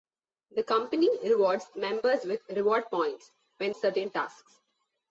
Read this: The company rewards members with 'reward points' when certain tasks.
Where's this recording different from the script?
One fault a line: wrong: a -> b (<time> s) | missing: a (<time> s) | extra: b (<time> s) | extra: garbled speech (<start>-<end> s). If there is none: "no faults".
no faults